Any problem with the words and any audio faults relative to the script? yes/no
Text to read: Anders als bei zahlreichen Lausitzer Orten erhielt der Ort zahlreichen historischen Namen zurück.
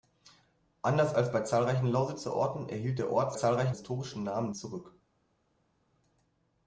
no